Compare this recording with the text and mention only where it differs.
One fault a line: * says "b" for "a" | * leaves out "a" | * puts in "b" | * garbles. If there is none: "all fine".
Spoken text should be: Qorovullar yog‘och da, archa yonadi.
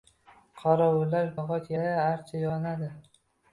all fine